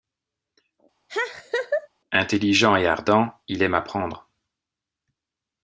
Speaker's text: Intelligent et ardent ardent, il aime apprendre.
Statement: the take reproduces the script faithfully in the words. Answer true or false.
false